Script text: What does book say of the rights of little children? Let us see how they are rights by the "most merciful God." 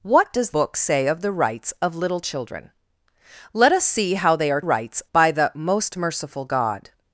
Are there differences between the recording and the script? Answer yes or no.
no